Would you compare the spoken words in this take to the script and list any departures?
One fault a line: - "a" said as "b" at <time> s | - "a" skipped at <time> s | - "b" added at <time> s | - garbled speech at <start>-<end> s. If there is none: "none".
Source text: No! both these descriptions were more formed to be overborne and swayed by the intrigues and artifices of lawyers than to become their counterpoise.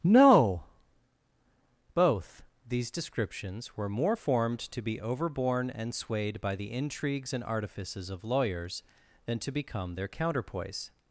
none